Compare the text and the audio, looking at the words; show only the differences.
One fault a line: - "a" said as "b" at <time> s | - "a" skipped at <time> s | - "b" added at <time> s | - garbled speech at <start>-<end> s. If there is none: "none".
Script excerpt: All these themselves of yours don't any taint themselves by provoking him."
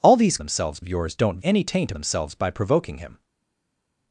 none